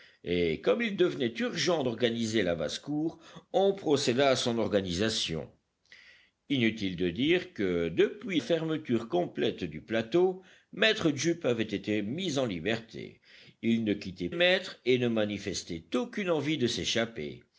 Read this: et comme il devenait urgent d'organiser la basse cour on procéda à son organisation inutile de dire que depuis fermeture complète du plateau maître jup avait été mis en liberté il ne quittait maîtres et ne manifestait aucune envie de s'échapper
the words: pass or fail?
pass